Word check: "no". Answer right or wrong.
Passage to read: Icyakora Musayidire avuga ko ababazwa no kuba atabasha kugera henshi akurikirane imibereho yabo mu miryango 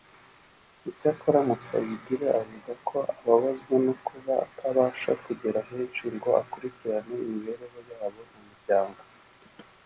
right